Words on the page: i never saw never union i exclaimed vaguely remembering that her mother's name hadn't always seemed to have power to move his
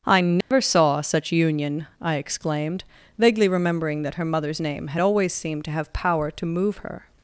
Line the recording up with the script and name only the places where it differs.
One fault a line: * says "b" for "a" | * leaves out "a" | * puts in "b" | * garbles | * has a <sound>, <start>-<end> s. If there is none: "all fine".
* has a dropout, 0.4-0.5 s
* says "such" for "never"
* says "had" for "hadn't"
* says "her" for "his"